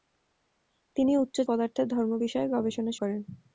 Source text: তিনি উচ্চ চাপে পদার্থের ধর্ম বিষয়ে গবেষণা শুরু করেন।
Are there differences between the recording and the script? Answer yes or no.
yes